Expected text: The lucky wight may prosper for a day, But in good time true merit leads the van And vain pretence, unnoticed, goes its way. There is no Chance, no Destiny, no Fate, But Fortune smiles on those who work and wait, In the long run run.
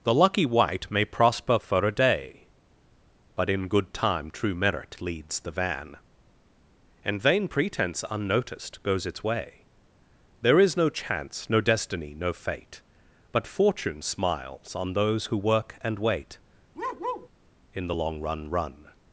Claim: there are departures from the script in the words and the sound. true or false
true